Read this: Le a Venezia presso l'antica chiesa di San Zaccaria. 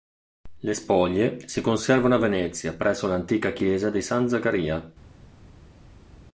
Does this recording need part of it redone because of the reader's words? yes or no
yes